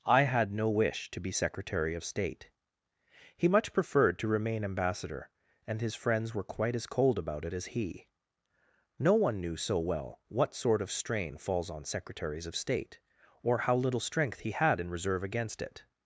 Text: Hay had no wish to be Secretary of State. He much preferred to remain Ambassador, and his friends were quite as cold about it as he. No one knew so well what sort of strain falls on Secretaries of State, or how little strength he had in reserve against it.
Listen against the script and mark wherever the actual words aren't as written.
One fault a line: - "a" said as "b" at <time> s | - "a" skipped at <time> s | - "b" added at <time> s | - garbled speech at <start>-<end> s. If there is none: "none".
- "Hay" said as "I" at 0.1 s